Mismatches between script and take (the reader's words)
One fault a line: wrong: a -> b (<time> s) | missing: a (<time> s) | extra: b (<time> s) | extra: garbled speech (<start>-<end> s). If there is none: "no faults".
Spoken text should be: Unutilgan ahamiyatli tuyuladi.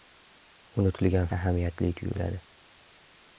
no faults